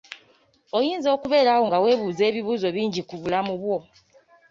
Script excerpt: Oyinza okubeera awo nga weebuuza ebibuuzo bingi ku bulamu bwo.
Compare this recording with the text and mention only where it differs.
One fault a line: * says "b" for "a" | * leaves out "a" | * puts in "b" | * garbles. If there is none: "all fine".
all fine